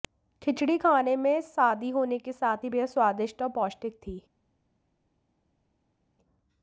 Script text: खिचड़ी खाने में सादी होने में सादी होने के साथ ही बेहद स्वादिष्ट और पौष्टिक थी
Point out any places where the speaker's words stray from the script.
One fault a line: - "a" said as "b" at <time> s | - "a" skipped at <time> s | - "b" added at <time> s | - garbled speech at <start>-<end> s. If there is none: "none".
- "में सादी होने" skipped at 2.2 s